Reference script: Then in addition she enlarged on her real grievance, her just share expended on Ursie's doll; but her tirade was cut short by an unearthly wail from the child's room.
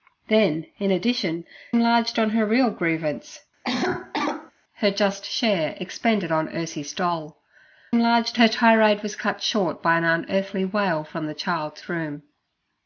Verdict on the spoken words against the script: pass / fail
fail